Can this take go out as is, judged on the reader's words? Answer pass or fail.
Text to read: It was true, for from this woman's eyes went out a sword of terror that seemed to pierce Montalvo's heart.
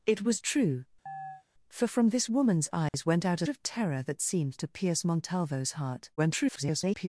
fail